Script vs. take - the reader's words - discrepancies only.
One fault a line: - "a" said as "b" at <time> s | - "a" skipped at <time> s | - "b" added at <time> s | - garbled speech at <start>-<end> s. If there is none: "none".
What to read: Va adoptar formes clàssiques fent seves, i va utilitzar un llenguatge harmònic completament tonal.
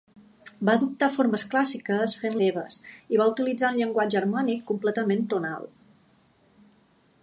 none